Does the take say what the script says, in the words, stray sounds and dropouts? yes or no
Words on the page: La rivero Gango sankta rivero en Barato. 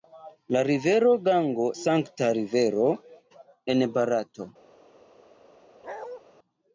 no